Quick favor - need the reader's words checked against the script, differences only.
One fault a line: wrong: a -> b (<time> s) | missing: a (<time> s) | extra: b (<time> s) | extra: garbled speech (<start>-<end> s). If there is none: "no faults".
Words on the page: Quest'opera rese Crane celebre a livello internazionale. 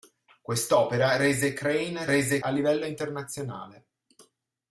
wrong: celebre -> rese (2.0 s)